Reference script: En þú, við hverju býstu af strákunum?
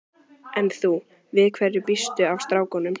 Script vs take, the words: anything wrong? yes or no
no